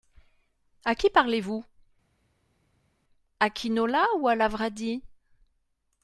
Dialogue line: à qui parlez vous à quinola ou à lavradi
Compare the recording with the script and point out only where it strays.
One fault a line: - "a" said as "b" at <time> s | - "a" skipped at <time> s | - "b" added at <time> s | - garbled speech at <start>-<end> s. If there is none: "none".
none